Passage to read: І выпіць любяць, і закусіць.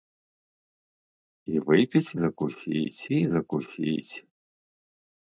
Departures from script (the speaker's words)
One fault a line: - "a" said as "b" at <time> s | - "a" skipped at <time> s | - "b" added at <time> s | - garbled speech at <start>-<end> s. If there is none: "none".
- "любяць" said as "закусіць" at 2.2 s